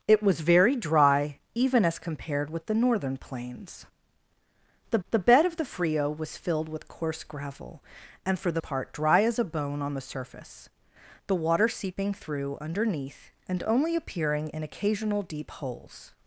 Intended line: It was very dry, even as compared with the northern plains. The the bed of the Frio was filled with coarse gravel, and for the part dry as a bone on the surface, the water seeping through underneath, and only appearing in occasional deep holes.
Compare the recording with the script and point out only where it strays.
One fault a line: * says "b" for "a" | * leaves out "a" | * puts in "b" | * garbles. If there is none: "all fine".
all fine